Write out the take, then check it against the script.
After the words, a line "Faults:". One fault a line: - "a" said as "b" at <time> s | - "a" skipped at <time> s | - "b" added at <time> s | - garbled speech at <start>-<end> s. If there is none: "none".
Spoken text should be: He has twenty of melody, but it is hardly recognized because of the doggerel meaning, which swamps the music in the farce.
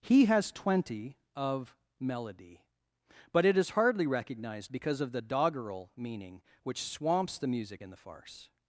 He has twenty of melody, but it is hardly recognized because of the doggerel meaning, which swamps the music in the farce.
Faults:
none